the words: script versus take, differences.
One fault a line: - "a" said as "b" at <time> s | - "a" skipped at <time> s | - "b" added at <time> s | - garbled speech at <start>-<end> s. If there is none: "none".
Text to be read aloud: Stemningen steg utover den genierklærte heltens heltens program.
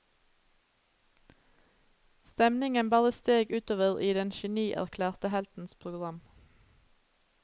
- "bare" added at 2.9 s
- "i" added at 4.0 s
- "heltens" skipped at 5.7 s